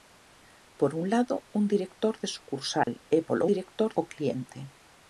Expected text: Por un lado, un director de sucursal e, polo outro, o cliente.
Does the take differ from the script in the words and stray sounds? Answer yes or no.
yes